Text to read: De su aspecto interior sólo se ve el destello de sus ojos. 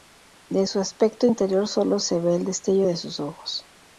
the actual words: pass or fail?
pass